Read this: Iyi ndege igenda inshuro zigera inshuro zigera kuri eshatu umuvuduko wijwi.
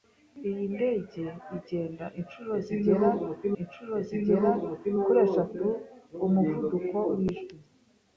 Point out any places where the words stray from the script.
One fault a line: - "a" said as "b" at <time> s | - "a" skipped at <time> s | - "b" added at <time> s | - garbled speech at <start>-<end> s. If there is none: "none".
none